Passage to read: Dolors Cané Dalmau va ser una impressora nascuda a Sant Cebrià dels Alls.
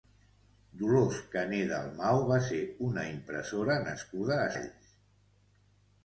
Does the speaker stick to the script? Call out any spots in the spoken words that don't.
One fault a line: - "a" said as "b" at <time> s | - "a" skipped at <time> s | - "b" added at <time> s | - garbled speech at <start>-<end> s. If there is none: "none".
- "Sant Cebrià dels" skipped at 4.5 s